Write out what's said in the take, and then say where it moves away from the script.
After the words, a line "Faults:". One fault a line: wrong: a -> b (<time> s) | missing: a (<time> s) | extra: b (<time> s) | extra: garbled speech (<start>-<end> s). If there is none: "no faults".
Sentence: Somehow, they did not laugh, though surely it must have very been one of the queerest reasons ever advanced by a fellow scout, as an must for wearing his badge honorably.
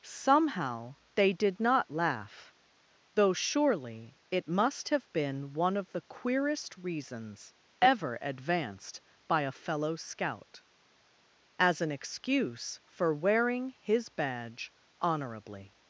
Somehow, they did not laugh, though surely it must have been one of the queerest reasons ever advanced by a fellow scout, as an excuse for wearing his badge honorably.
Faults:
missing: very (5.1 s)
wrong: must -> excuse (11.9 s)